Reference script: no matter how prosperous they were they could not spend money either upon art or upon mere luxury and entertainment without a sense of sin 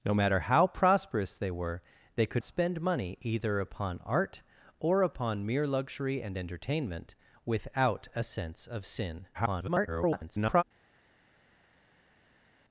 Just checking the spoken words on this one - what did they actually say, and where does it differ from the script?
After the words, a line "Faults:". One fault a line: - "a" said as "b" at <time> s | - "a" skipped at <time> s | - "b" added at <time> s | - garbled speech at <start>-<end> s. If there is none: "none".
no matter how prosperous they were they could spend money either upon art or upon mere luxury and entertainment without a sense of sin [garbled]
Faults:
- "not" skipped at 2.4 s
- garbled speech at 9.3-10.6 s